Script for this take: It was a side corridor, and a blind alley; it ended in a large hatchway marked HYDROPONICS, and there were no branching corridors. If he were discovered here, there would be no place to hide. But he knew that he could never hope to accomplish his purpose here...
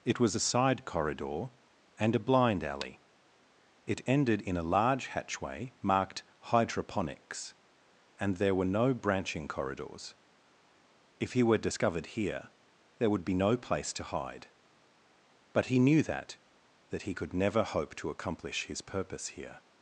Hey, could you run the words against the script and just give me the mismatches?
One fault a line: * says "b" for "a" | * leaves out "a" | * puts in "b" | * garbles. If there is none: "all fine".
* puts in "that"